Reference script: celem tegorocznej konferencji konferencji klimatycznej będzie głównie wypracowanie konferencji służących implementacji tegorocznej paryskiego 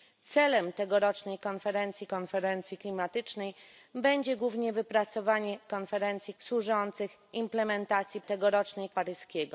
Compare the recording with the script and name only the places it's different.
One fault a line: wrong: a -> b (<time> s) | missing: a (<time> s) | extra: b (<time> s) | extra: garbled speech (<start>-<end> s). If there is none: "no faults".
no faults